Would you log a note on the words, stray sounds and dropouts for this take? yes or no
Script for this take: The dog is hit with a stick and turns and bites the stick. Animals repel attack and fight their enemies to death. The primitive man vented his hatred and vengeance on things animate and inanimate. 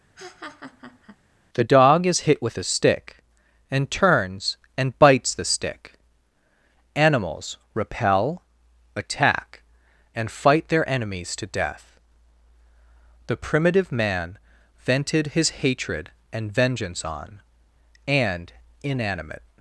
yes